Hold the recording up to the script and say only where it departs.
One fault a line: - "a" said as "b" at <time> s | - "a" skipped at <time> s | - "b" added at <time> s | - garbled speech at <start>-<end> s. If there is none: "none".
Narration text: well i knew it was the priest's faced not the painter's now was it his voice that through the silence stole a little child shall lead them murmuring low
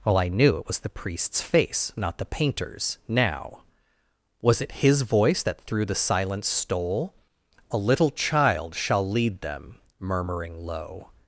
- "faced" said as "face" at 1.4 s